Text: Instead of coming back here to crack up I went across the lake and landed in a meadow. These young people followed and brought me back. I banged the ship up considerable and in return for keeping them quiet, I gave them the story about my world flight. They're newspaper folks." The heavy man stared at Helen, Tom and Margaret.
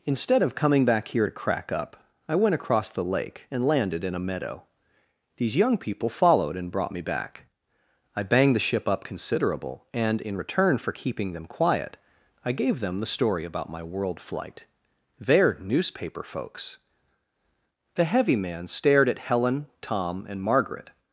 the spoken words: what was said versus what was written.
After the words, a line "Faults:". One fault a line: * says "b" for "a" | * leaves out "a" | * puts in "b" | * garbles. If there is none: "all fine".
Instead of coming back here to crack up I went across the lake and landed in a meadow. These young people followed and brought me back. I banged the ship up considerable and in return for keeping them quiet, I gave them the story about my world flight. They're newspaper folks." The heavy man stared at Helen, Tom and Margaret.
Faults:
all fine